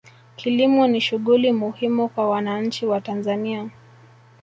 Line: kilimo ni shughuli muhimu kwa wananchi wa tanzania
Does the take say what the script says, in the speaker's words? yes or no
yes